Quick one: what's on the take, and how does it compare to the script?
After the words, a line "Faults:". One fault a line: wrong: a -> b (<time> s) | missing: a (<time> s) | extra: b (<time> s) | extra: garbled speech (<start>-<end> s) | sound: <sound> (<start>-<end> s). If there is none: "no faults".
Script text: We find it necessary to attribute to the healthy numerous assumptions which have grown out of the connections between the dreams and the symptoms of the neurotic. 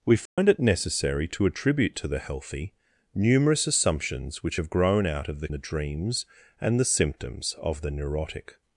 We find it necessary to attribute to the healthy numerous assumptions which have grown out of the the dreams and the symptoms of the neurotic.
Faults:
sound: dropout (0.3-0.4 s)
missing: connections between (5.5 s)